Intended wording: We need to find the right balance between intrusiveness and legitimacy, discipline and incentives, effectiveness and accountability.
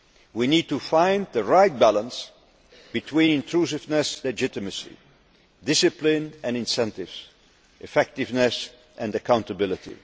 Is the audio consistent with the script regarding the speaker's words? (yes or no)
no